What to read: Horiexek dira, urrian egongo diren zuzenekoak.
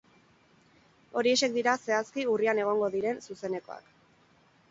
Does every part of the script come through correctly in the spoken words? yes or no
no